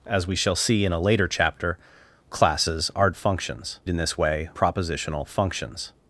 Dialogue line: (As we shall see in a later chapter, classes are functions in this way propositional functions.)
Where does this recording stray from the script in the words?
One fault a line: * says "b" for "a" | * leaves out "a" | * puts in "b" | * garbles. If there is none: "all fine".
all fine